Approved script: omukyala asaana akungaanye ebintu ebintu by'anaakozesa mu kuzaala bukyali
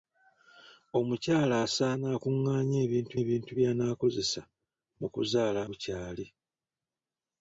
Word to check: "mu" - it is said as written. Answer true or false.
true